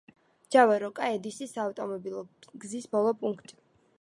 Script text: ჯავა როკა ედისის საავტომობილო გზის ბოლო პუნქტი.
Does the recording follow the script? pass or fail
pass